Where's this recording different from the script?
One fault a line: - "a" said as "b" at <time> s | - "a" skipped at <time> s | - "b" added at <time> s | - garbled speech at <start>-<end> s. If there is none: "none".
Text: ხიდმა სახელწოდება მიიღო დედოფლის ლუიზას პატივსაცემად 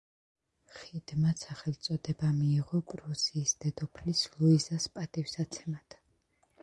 - "პრუსიის" added at 2.9 s